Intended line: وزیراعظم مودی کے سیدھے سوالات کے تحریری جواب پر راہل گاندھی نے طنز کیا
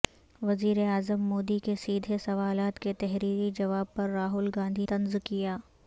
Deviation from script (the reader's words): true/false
true